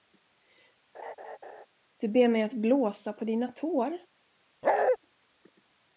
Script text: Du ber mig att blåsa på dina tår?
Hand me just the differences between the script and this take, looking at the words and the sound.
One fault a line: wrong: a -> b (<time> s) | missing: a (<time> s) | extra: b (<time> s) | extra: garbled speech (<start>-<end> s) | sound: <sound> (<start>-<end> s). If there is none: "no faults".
sound: laugh (0.9-1.7 s)
sound: bark (4.6-5.0 s)